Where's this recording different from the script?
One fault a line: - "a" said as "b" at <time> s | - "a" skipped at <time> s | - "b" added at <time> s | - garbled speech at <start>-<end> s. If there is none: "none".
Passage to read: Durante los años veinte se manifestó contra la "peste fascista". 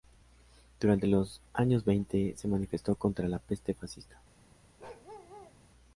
none